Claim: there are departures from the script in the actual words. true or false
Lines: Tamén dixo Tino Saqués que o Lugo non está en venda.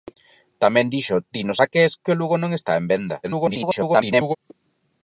true